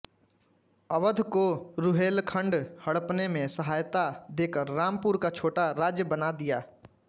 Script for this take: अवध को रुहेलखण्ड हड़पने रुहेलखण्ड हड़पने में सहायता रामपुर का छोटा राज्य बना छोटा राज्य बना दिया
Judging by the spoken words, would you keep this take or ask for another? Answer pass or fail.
fail